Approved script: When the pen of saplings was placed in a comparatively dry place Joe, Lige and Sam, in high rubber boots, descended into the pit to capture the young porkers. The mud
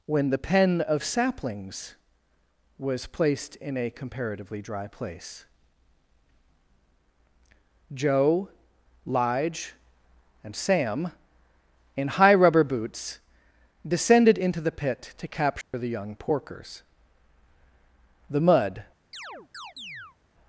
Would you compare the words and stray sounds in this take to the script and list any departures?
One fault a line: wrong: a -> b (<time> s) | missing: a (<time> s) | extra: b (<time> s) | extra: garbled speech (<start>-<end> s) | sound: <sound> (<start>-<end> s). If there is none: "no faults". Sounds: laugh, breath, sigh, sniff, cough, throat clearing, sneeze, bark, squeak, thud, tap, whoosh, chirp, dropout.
sound: dropout (15.6-15.7 s)
sound: chirp (19.1-20.2 s)